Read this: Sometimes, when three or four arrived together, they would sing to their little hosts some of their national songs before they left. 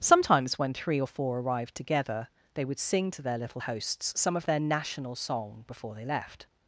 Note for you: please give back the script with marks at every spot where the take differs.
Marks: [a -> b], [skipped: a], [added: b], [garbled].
Sometimes, when three or four arrived together, they would sing to their little hosts some of their national [songs -> song] before they left.